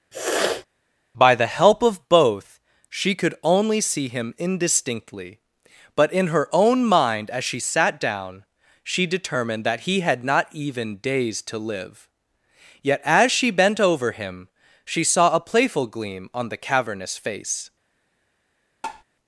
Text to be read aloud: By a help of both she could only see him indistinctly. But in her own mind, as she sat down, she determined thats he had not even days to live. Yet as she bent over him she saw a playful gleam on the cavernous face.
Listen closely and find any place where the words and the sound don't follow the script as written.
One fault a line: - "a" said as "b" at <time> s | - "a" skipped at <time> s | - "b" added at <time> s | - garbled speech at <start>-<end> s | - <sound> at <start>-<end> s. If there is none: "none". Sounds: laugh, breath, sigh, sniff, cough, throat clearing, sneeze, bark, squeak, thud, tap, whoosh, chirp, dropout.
- sniff at 0.1-0.7 s
- "a" said as "the" at 1.3 s
- "thats" said as "that" at 9.6 s
- tap at 18.8-19.0 s